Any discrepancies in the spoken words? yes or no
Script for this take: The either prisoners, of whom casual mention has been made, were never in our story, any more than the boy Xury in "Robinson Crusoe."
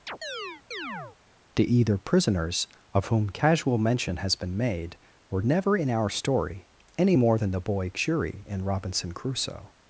no